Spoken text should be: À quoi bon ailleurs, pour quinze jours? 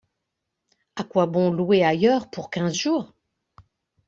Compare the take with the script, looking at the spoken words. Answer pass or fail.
fail